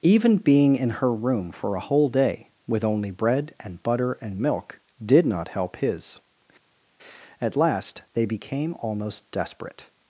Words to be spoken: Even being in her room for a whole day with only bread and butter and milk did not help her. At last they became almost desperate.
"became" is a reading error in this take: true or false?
false